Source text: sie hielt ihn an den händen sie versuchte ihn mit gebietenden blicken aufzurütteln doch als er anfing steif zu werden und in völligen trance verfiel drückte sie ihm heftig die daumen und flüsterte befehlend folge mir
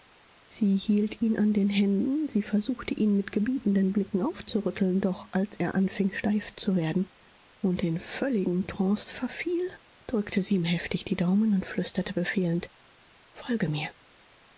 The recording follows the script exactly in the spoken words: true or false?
true